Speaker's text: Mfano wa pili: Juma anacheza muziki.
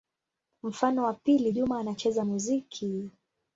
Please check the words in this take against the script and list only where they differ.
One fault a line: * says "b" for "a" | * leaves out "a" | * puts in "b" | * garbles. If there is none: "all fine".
all fine